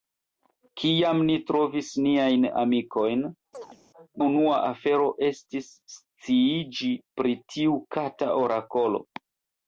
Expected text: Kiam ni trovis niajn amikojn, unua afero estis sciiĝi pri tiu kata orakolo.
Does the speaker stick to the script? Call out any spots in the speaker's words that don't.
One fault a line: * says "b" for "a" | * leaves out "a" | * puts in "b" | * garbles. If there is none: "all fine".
all fine